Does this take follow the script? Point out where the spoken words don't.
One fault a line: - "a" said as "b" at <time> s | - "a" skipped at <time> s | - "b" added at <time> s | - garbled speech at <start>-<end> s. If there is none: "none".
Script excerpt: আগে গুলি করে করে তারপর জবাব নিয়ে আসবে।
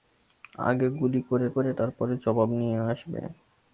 none